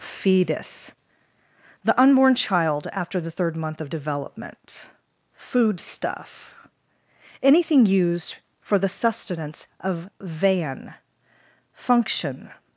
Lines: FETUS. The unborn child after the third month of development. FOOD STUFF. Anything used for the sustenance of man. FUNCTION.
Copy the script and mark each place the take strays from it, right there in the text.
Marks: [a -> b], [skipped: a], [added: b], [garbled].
FETUS. The unborn child after the third month of development. FOOD STUFF. Anything used for the sustenance of [man. -> van] FUNCTION.